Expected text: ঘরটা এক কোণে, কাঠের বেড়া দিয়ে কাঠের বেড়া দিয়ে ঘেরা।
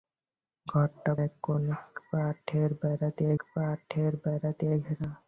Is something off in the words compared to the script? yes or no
no